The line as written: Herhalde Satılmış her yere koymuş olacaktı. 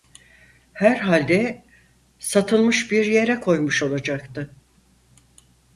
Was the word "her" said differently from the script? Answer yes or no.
yes